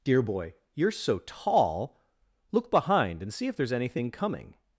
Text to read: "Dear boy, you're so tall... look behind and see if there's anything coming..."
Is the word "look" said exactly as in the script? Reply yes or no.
yes